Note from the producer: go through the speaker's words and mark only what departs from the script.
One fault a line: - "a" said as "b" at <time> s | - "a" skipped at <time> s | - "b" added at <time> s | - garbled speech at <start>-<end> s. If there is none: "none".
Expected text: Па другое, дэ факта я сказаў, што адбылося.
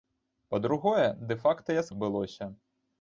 - "сказаў што" skipped at 1.9 s